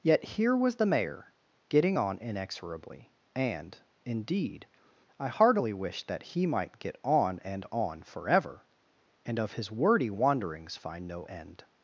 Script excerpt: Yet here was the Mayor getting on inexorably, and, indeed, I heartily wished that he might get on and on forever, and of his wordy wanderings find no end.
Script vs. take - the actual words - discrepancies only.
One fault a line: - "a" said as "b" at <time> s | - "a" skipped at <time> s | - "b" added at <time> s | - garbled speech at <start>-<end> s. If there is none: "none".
none